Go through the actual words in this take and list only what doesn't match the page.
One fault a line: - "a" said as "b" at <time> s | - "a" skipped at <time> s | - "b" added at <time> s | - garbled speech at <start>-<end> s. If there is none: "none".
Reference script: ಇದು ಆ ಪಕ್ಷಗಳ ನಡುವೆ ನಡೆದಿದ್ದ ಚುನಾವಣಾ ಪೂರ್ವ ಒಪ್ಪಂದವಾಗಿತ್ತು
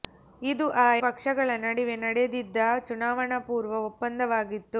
none